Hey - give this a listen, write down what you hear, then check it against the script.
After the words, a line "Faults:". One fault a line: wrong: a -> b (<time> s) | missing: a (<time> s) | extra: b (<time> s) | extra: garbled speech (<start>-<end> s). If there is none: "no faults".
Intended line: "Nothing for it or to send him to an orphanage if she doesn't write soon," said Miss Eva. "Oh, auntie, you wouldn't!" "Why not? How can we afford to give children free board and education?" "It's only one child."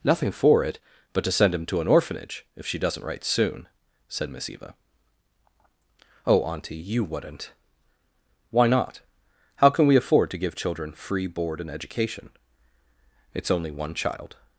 "Nothing for it but to send him to an orphanage if she doesn't write soon," said Miss Eva. "Oh, auntie, you wouldn't!" "Why not? How can we afford to give children free board and education?" "It's only one child."
Faults:
wrong: or -> but (1.1 s)